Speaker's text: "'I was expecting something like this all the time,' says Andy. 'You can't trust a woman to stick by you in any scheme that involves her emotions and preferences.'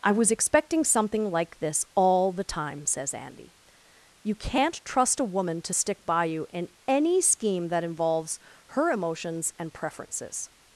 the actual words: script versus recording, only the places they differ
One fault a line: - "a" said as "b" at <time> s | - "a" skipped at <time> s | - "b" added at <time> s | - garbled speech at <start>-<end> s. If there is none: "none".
none